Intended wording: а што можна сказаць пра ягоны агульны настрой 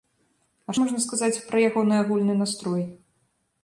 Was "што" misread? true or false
true